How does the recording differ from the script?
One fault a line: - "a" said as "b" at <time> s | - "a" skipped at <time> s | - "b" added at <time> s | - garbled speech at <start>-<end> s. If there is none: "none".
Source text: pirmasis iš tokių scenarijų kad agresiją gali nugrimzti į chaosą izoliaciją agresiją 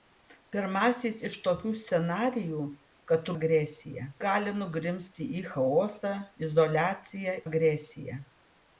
none